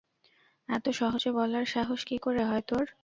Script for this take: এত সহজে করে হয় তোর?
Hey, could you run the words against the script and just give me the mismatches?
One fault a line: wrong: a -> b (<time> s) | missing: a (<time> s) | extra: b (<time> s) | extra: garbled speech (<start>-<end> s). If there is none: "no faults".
extra: বলার সাহস কী (1.3 s)